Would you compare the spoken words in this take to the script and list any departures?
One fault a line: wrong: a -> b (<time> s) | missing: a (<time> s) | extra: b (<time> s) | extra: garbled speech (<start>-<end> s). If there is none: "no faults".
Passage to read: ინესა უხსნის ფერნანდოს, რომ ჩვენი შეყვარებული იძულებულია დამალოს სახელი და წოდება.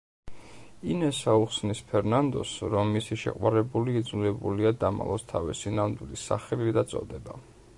wrong: ჩვენი -> მისი (3.0 s)
extra: თავისი ნამდვილი (5.3 s)